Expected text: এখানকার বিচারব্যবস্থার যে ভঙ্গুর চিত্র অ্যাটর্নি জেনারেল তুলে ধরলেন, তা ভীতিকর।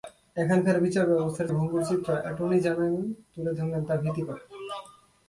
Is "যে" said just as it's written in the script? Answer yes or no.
no